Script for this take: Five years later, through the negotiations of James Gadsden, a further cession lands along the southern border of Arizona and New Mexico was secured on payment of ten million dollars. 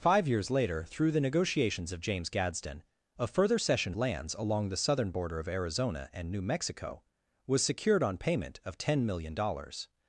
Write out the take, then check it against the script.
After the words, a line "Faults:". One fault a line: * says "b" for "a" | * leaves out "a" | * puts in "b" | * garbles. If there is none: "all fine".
Five years later, through the negotiations of James Gadsden, a further cession lands along the southern border of Arizona and New Mexico was secured on payment of ten million dollars.
Faults:
all fine